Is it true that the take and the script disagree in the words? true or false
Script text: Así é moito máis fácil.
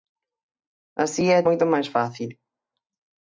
false